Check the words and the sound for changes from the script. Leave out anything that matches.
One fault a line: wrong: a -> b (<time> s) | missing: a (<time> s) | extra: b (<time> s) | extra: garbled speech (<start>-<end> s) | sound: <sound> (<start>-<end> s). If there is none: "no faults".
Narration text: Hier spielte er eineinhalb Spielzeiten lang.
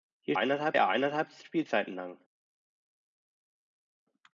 wrong: spielte -> eineinhalb (0.4 s)